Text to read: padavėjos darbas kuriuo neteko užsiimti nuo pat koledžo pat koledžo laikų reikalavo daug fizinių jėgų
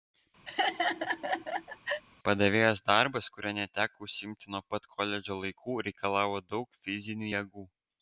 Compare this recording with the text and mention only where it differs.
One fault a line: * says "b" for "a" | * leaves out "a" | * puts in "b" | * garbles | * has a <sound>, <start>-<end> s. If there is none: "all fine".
* has a laugh, 0.5-2.0 s
* leaves out "pat koledžo"